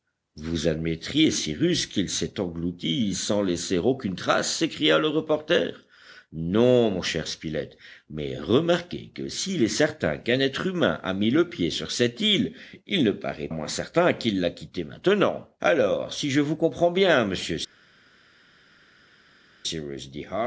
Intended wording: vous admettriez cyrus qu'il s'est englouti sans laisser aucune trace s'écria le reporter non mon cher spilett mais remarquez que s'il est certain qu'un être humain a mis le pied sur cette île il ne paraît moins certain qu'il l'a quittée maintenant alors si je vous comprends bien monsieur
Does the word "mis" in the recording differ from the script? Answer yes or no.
no